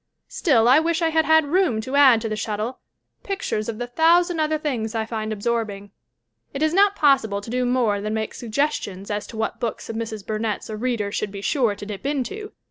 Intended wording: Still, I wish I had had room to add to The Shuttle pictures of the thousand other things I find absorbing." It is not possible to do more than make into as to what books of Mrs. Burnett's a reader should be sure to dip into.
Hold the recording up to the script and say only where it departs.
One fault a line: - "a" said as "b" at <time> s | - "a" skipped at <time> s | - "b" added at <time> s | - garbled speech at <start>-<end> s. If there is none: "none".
- "into" said as "suggestions" at 8.3 s